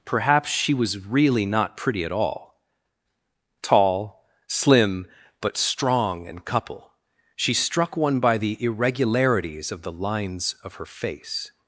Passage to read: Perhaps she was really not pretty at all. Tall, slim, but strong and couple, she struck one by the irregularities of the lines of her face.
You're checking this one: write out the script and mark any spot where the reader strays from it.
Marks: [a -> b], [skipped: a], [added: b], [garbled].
Perhaps she was really not pretty at all. Tall, slim, but strong and couple, she struck one by the irregularities of the lines of her face.